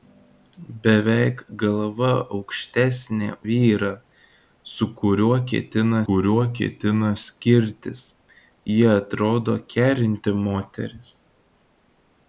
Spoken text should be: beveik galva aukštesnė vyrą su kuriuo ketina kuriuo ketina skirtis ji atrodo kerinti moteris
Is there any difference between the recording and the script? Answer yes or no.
no